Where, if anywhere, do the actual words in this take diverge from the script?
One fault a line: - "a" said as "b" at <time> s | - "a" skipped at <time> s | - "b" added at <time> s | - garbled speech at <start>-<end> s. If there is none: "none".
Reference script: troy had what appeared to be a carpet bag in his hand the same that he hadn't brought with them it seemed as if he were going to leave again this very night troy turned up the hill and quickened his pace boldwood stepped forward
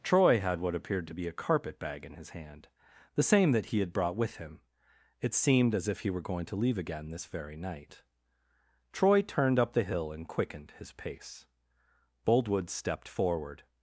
- "hadn't" said as "had" at 3.8 s
- "them" said as "him" at 4.4 s